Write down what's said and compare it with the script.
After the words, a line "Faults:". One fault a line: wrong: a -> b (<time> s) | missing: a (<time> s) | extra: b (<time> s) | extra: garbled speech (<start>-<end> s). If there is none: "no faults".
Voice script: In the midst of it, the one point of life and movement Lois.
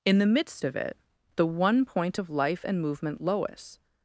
In the midst of it, the one point of life and movement Lois.
Faults:
no faults